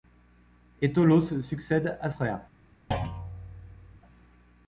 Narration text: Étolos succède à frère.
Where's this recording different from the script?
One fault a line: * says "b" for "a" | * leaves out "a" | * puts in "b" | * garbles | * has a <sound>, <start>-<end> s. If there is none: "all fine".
* has a thud, 2.9-4.0 s